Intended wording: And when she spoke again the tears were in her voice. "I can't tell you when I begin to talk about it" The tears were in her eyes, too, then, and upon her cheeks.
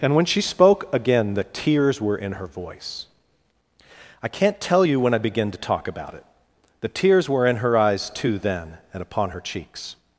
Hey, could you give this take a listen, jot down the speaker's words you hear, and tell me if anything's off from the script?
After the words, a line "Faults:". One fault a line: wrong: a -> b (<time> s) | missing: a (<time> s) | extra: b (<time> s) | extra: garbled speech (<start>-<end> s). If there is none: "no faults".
And when she spoke again the tears were in her voice. "I can't tell you when I begin to talk about it" The tears were in her eyes, too, then, and upon her cheeks.
Faults:
no faults